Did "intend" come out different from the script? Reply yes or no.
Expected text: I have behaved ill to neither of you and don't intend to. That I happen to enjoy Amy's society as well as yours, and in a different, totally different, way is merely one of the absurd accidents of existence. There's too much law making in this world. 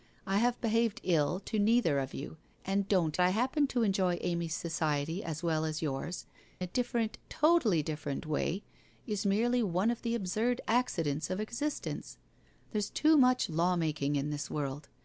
yes